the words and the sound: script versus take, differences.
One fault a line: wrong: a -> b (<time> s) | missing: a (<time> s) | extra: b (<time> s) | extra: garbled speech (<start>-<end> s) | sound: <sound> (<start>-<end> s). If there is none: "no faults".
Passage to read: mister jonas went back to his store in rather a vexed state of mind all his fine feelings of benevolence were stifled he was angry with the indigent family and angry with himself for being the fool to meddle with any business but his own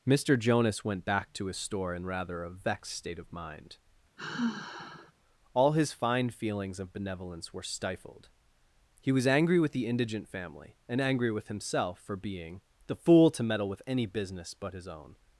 sound: sigh (4.2-5.1 s)